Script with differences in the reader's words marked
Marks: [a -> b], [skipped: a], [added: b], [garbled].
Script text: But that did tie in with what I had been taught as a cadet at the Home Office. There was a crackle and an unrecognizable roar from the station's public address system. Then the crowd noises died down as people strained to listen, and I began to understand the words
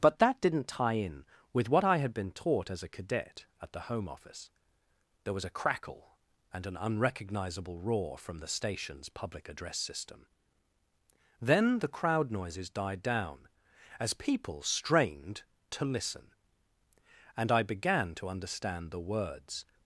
But that [did -> didn't] tie in with what I had been taught as a cadet at the Home Office. There was a crackle and an unrecognizable roar from the station's public address system. Then the crowd noises died down as people strained to listen, and I began to understand the words